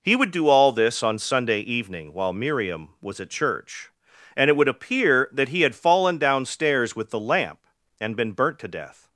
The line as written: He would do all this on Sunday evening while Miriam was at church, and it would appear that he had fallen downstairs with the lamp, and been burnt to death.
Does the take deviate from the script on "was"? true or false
false